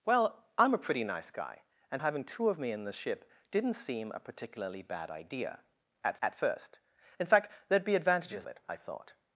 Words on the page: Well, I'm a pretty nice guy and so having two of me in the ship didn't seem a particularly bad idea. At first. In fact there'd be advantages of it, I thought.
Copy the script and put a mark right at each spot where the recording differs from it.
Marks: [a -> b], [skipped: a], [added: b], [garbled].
Well, I'm a pretty nice guy and [skipped: so] having two of me in the ship didn't seem a particularly bad idea. At [added: at] first. In fact there'd be advantages [skipped: of] it, I thought.